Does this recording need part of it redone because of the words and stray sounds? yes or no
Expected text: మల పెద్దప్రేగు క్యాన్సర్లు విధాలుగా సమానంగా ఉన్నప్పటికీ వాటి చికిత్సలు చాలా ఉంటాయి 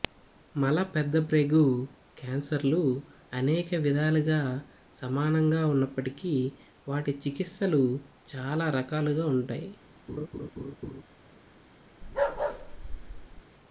yes